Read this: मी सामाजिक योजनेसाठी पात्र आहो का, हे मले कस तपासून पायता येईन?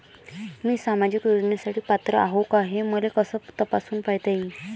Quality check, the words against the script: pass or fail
pass